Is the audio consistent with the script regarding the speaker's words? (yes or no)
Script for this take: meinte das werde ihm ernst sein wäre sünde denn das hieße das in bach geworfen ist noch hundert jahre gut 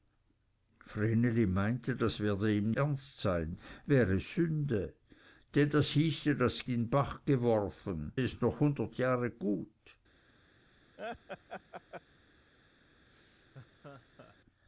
yes